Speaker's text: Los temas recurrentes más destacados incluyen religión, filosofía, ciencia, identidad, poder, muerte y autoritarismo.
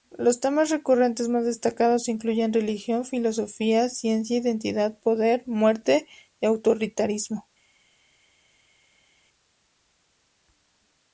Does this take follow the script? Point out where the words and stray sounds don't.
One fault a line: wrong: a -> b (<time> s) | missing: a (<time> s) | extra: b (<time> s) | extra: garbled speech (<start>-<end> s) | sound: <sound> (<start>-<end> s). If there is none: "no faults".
no faults